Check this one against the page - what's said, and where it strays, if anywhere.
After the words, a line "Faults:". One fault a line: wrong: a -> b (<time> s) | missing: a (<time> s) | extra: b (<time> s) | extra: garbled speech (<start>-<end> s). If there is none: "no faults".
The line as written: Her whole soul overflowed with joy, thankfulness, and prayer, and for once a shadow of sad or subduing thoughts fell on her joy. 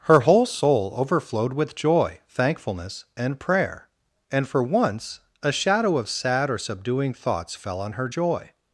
Her whole soul overflowed with joy, thankfulness, and prayer, and for once a shadow of sad or subduing thoughts fell on her joy.
Faults:
no faults